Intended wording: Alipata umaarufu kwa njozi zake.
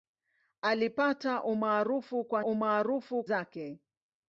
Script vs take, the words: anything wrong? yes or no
yes